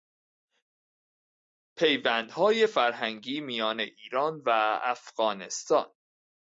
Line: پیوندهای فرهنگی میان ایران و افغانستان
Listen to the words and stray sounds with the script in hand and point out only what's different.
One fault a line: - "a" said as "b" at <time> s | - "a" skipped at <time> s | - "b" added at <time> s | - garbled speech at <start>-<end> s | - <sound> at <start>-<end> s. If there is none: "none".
none